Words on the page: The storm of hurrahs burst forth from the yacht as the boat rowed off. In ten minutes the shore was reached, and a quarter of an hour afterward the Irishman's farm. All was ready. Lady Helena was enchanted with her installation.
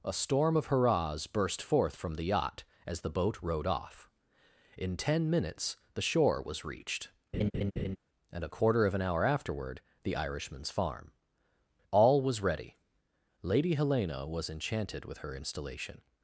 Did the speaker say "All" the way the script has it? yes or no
yes